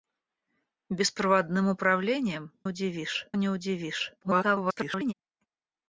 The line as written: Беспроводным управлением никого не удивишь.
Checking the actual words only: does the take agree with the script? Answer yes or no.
no